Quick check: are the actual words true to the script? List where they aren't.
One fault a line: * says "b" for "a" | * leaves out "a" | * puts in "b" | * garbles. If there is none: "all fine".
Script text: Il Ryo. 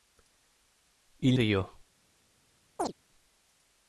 all fine